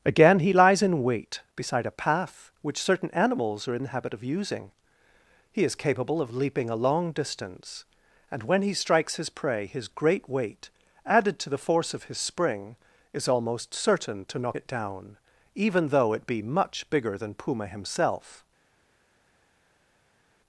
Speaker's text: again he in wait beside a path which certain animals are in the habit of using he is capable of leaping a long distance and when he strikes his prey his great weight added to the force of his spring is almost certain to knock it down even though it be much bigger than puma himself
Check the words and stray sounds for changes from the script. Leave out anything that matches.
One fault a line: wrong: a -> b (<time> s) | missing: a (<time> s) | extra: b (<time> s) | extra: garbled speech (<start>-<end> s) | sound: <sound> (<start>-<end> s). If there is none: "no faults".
extra: lies (0.5 s)